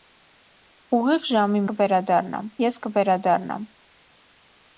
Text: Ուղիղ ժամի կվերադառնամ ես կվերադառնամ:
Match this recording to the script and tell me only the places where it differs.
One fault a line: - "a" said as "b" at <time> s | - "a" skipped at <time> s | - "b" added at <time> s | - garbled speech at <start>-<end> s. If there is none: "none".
none